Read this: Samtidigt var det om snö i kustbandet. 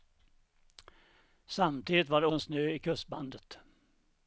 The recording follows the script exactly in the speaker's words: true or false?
true